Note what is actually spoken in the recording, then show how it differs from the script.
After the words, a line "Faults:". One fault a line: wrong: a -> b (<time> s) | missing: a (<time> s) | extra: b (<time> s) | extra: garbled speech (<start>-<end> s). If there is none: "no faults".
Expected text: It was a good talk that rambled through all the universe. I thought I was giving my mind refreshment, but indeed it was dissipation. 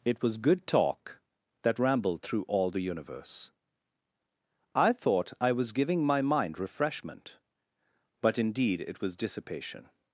It was good talk that rambled through all the universe. I thought I was giving my mind refreshment, but indeed it was dissipation.
Faults:
missing: a (0.4 s)